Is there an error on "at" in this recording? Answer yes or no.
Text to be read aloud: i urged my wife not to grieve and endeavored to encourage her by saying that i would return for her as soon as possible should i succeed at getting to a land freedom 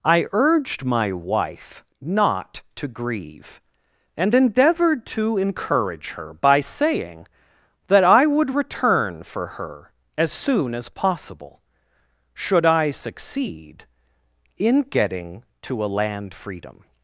yes